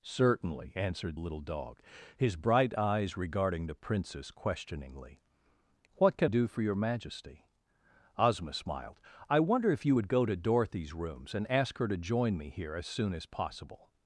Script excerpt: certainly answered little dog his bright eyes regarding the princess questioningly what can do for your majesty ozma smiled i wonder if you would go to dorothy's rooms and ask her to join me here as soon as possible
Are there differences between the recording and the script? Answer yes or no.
no